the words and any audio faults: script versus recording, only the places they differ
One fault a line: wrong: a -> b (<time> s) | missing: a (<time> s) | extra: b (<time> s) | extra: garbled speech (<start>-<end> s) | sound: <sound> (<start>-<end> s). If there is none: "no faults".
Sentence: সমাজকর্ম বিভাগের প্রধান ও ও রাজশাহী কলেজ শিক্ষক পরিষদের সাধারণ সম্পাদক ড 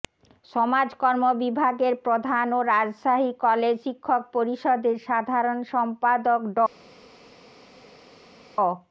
missing: ও (2.7 s)